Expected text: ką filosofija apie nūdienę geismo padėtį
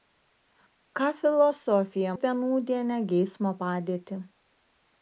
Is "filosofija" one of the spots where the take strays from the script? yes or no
no